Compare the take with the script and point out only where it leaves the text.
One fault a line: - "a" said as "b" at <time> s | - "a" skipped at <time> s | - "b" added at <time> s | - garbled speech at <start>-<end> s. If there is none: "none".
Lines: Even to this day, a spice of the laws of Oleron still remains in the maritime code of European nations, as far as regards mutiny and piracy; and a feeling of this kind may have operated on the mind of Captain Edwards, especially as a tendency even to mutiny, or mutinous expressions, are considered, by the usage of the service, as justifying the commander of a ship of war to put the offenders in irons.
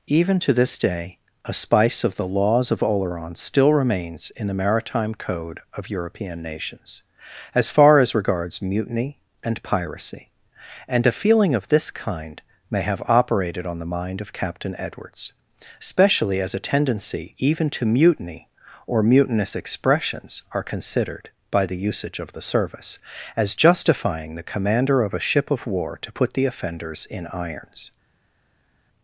none